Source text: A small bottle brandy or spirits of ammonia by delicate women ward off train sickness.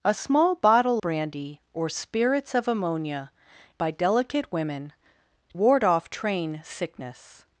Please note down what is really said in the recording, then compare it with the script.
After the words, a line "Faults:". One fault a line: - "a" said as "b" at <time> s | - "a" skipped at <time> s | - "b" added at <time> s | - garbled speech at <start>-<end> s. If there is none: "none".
A small bottle brandy or spirits of ammonia by delicate women ward off train sickness.
Faults:
none